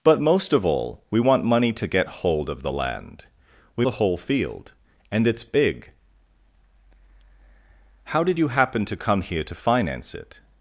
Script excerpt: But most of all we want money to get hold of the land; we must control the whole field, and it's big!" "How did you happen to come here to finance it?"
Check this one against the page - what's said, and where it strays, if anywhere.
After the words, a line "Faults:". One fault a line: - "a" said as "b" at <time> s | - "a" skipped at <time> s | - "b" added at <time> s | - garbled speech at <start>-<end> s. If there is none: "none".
But most of all we want money to get hold of the land; we the whole field, and it's big!" "How did you happen to come here to finance it?"
Faults:
- "must control" skipped at 3.9 s